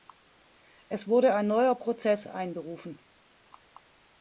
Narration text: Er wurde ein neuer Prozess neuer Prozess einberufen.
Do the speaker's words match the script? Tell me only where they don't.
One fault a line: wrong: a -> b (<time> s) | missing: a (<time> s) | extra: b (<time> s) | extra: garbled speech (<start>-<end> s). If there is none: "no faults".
wrong: Er -> Es (0.9 s)
missing: neuer Prozess (2.2 s)